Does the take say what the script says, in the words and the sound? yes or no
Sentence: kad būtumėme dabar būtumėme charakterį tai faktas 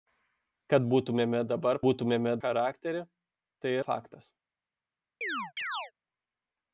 no